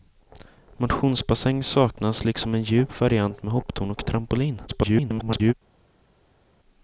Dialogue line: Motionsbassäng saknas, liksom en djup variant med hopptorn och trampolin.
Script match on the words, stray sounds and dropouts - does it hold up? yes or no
no